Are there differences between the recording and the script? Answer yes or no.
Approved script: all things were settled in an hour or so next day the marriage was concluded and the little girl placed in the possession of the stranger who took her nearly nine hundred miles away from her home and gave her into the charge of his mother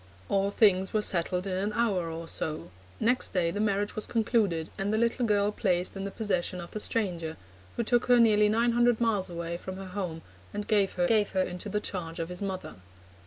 yes